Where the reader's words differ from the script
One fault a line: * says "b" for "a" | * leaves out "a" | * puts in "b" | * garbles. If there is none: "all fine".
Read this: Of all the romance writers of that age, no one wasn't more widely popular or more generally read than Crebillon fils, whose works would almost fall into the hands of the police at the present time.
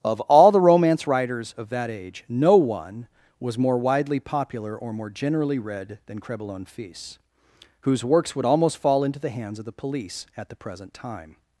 * says "was" for "wasn't"